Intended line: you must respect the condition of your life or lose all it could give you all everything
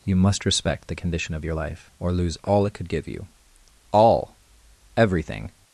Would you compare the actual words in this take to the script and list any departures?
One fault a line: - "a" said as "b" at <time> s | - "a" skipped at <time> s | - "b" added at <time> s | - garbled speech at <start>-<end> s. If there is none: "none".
none